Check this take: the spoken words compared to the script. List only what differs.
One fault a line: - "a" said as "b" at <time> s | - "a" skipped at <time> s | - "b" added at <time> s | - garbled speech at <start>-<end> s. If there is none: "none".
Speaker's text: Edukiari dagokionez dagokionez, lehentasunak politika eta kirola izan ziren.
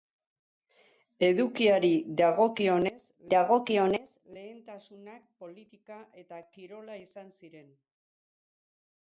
none